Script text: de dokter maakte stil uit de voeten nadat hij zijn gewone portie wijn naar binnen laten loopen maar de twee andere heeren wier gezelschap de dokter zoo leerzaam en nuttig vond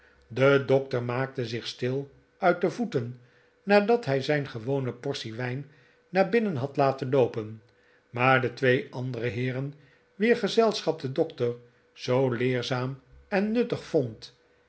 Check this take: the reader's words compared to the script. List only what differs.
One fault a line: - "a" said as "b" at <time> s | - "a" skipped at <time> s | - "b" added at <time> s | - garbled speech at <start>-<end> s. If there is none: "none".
- "zich" added at 1.4 s
- "had" added at 6.5 s